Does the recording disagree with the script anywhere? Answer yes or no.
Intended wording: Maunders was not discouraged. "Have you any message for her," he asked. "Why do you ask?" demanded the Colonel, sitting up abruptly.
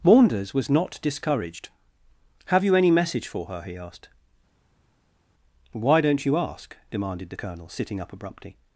yes